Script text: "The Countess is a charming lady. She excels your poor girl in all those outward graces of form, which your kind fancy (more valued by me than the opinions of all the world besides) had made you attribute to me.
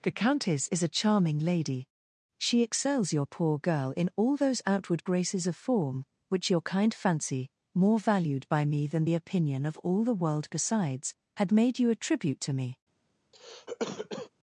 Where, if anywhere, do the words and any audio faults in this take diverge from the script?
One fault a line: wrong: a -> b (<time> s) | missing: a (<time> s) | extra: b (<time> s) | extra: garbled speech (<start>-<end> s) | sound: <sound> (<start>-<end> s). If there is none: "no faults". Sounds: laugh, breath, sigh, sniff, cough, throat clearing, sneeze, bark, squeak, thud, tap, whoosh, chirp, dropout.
wrong: opinions -> opinion (9.2 s)
sound: cough (13.3-14.3 s)